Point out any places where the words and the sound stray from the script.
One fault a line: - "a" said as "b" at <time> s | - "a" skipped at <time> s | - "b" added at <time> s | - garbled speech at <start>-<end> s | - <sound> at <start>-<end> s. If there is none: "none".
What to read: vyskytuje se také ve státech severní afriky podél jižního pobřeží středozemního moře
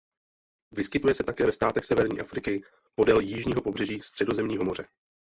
none